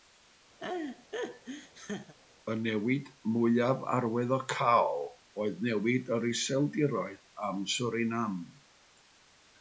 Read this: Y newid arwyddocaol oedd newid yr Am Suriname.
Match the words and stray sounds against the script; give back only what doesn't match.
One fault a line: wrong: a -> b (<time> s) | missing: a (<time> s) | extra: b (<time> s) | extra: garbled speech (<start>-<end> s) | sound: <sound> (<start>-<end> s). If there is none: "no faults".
sound: laugh (0.6-2.2 s)
extra: mwyaf (3.3 s)
extra: Iseldiroedd (6.3 s)